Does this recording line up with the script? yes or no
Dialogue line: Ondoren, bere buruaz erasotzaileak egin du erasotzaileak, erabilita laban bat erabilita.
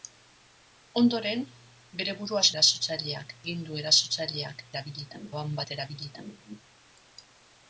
yes